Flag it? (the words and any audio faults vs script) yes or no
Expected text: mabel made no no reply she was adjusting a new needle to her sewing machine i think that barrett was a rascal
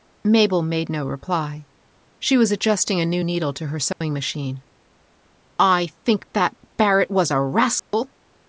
yes